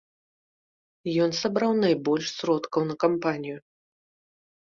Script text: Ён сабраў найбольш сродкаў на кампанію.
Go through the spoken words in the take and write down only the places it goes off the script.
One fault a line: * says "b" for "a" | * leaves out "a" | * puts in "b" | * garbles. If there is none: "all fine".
all fine